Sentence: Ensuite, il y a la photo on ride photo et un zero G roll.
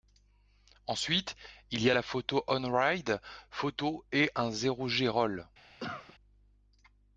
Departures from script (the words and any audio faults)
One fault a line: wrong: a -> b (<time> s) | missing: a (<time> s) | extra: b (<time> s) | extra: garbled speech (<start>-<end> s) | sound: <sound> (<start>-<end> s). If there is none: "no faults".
sound: cough (5.8-6.2 s)